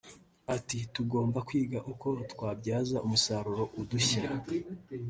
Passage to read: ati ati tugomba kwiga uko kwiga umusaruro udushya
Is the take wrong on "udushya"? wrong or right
right